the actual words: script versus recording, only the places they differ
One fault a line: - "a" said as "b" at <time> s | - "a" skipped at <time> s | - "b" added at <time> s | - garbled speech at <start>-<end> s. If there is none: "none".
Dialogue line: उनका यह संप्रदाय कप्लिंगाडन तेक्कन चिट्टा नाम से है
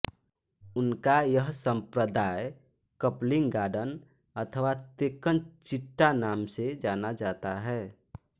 - "अथवा" added at 4.3 s
- "जाना जाता" added at 6.8 s